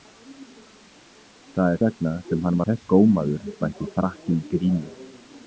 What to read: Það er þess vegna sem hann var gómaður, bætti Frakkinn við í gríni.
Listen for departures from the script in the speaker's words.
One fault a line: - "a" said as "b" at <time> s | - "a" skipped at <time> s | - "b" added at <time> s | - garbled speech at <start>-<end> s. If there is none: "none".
- "þess" skipped at 1.8 s
- "var" said as "þess" at 2.6 s
- "við" skipped at 4.4 s